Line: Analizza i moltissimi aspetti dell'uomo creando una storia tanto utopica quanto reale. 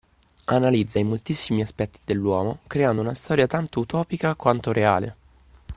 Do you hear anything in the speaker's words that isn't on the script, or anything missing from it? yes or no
no